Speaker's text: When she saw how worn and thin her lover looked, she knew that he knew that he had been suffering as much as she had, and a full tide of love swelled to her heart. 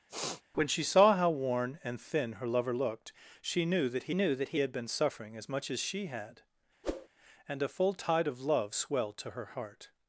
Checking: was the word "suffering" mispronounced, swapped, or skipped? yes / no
no